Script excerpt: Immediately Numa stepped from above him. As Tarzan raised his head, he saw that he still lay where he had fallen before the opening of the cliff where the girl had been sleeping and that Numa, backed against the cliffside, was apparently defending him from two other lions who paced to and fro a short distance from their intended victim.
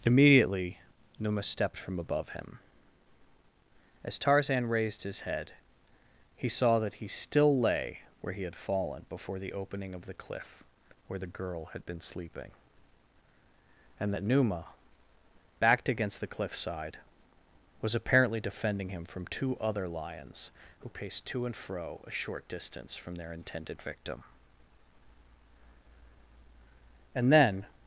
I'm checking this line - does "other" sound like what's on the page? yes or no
yes